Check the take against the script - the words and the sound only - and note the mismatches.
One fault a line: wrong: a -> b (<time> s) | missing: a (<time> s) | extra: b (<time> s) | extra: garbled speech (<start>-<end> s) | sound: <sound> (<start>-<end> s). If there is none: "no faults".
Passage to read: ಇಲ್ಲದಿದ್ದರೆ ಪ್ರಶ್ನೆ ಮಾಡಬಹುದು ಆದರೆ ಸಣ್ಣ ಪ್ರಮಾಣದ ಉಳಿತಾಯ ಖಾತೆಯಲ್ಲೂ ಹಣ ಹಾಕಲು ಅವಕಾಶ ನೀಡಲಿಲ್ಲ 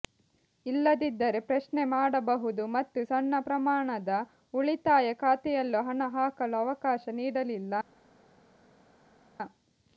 wrong: ಆದರೆ -> ಮತ್ತು (2.8 s)